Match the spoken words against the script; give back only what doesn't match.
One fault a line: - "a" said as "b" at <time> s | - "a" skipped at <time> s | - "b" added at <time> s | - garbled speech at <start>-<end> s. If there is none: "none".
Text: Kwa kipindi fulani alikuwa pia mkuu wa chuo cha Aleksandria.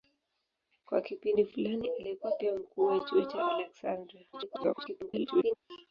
- garbled speech at 4.3-5.6 s